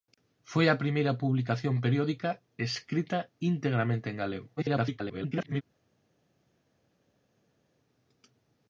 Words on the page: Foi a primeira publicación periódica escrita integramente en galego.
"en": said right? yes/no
yes